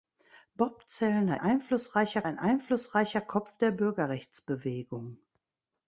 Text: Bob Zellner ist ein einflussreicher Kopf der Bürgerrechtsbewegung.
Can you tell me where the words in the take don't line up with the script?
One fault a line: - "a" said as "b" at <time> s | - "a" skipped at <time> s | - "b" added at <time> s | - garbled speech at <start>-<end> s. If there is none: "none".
- "ist" said as "einflussreicher" at 1.4 s